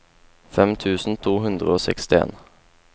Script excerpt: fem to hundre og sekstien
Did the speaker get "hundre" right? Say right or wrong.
right